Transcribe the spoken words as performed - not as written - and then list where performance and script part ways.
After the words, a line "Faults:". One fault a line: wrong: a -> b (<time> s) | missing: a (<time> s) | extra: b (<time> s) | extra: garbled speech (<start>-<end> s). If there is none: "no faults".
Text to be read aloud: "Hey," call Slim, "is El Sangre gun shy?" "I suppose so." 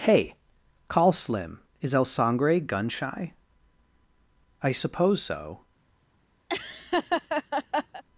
"Hey," call Slim, "is El Sangre gun shy?" "I suppose so."
Faults:
no faults